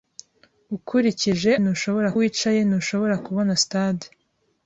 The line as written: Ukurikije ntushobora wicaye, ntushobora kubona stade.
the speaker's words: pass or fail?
pass